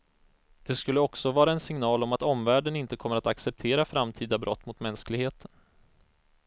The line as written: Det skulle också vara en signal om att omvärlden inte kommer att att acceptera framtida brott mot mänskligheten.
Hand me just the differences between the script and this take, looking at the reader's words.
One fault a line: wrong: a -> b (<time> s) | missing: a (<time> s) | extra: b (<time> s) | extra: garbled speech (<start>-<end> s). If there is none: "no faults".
missing: att (3.3 s)